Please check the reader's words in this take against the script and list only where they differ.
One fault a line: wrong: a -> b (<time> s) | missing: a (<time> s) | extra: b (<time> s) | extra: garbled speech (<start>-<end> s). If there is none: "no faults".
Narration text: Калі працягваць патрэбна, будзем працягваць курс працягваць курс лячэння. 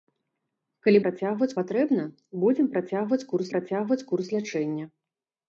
no faults